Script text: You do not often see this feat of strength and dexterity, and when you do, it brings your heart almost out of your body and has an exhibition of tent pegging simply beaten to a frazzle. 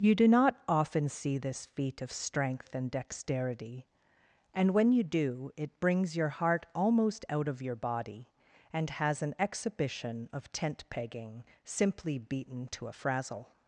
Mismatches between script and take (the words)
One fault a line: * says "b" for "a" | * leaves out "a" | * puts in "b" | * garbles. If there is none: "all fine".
all fine